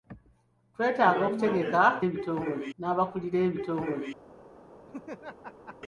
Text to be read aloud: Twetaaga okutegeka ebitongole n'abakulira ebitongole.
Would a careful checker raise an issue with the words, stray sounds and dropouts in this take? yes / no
yes